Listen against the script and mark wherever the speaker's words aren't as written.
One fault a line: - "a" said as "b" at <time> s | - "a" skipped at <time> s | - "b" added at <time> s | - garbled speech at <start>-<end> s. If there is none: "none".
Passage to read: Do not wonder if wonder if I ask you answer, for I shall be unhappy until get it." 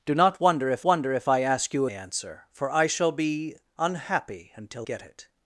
none